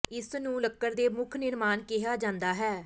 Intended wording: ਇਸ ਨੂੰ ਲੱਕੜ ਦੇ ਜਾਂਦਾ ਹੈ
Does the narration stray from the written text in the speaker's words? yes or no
yes